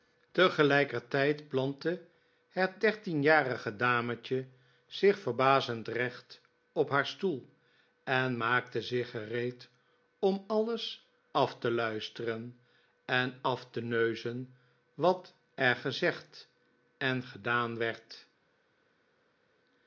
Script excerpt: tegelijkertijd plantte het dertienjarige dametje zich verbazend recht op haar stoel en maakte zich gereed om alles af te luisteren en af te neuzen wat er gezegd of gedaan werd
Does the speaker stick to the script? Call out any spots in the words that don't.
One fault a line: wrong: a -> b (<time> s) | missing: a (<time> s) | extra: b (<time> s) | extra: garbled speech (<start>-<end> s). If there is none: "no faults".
wrong: of -> en (17.0 s)